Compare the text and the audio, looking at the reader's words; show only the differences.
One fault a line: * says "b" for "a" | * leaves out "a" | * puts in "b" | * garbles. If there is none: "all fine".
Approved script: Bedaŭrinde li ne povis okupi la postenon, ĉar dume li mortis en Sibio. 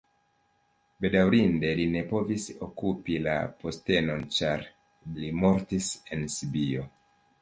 * leaves out "dume"